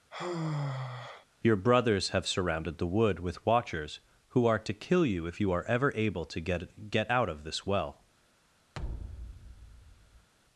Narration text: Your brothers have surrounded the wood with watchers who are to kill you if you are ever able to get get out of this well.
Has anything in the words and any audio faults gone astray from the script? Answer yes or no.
yes